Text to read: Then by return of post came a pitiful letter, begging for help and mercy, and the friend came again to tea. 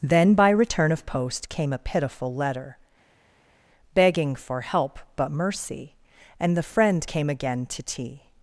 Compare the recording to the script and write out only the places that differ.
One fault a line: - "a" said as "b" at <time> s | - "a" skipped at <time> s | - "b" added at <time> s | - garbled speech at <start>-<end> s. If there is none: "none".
- "and" said as "but" at 5.2 s